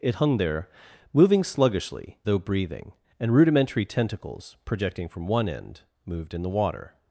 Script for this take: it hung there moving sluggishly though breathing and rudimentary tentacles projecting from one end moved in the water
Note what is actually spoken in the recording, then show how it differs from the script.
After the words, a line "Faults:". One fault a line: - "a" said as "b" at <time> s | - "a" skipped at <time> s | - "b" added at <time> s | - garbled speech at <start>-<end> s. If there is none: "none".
it hung there moving sluggishly though breathing and rudimentary tentacles projecting from one end moved in the water
Faults:
none